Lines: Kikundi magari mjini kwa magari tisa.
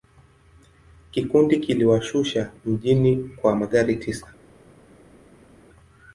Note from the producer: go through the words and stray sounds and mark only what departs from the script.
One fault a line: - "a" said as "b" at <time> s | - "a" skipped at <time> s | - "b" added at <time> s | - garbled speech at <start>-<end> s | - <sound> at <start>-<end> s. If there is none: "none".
- "magari" said as "kiliwashusha" at 1.6 s